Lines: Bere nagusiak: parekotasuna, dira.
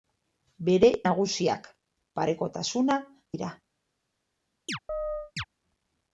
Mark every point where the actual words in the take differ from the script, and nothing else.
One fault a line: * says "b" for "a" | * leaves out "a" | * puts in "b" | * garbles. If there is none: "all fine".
all fine